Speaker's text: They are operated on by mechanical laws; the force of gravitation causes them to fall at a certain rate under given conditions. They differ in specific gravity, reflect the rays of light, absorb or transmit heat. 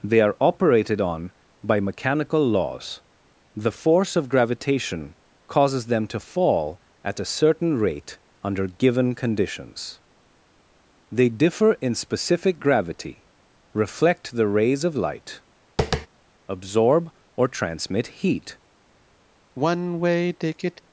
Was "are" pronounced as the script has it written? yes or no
yes